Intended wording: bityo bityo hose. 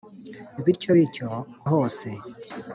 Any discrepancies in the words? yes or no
no